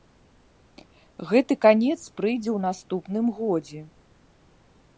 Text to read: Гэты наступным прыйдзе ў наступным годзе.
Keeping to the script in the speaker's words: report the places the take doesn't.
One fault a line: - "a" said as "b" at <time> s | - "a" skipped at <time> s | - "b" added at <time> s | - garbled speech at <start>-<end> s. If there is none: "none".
- "наступным" said as "канец" at 1.6 s